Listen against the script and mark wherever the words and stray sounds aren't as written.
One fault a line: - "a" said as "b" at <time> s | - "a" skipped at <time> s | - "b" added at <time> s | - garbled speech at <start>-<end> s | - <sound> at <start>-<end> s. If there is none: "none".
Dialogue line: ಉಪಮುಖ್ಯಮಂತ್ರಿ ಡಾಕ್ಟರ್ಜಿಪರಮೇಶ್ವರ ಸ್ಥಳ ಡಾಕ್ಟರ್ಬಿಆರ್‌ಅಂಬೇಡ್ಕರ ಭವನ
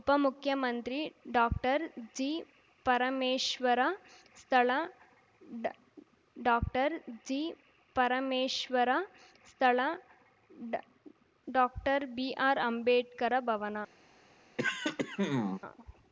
- "ಡಾಕ್ಟರ್ಜಿಪರಮೇಶ್ವರ ಸ್ಥಳ" added at 6.4 s
- throat clearing at 14.6-15.6 s